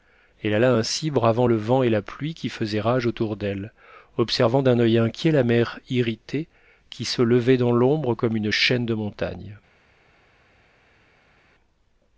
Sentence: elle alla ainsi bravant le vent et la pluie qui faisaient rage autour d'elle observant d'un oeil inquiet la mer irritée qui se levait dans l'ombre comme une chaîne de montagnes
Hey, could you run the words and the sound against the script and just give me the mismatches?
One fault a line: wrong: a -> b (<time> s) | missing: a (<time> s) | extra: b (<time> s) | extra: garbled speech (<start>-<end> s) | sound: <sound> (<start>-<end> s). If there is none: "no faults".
no faults